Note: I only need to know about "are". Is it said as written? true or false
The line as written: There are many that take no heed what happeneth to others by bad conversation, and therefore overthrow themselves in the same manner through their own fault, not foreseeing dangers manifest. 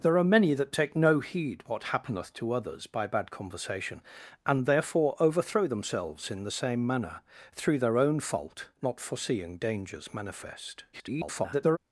true